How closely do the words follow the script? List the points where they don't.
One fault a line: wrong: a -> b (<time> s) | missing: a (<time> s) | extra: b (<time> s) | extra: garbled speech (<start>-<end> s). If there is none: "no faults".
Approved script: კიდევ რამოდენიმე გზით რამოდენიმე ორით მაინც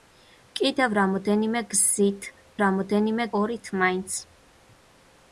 no faults